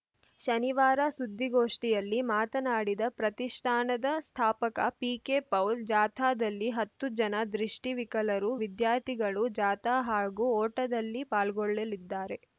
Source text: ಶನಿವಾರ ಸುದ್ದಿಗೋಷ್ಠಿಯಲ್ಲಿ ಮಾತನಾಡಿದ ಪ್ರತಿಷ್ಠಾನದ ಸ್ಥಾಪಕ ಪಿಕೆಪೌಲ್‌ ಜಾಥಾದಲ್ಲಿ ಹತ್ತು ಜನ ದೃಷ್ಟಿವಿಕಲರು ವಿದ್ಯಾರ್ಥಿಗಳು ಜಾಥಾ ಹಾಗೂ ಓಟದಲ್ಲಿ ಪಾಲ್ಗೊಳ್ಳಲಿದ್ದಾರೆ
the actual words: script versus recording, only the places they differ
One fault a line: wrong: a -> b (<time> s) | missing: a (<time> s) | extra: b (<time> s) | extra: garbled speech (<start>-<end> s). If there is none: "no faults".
no faults